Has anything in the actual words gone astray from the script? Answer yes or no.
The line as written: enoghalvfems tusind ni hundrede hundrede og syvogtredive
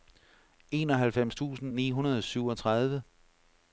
yes